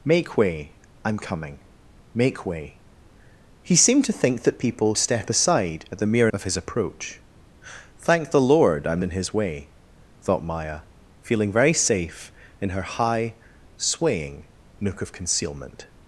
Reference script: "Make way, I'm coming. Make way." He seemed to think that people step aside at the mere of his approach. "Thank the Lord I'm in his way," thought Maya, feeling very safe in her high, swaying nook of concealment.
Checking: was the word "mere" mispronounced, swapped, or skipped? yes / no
no